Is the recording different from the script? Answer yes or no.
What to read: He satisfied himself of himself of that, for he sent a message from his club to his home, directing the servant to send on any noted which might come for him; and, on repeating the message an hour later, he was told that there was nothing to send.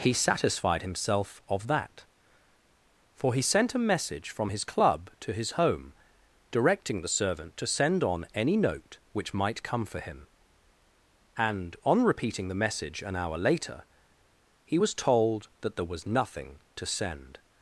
yes